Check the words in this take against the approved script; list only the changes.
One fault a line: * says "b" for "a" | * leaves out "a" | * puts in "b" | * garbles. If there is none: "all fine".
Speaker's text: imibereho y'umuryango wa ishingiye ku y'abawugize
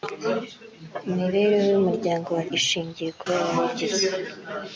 all fine